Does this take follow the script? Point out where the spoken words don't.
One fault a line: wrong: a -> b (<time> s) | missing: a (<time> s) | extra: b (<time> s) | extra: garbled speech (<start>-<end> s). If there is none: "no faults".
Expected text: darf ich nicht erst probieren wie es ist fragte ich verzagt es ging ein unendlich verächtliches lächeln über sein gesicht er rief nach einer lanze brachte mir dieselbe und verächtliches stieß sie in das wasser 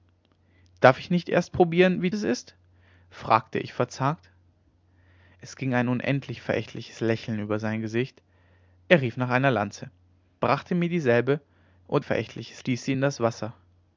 no faults